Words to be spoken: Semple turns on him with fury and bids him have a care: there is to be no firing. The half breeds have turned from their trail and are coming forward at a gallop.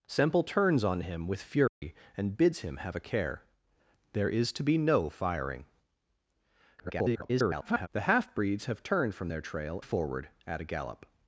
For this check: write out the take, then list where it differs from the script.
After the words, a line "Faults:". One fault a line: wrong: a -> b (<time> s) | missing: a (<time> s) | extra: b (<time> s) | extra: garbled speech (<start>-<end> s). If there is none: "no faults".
Semple turns on him with fury and bids him have a care: there is to be no firing. [garbled] The half breeds have turned from their trail forward at a gallop.
Faults:
extra: garbled speech (6.8-7.9 s)
missing: and are coming (9.8 s)